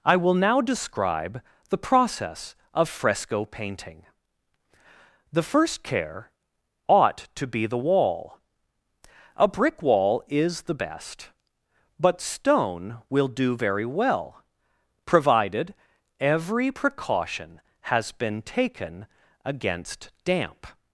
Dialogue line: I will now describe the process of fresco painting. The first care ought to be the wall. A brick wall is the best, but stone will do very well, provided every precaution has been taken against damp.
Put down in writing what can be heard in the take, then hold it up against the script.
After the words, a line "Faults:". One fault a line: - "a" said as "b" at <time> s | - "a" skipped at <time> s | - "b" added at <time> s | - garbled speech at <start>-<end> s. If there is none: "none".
I will now describe the process of fresco painting. The first care ought to be the wall. A brick wall is the best, but stone will do very well, provided every precaution has been taken against damp.
Faults:
none